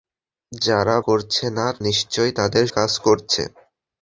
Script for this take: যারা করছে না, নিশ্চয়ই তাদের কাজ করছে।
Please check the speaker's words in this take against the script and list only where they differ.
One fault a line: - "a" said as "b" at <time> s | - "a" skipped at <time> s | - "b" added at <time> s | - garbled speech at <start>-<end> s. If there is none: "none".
none